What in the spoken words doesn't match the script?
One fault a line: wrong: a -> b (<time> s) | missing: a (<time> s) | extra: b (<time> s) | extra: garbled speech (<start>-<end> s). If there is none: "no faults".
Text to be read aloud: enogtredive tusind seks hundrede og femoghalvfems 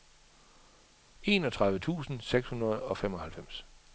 no faults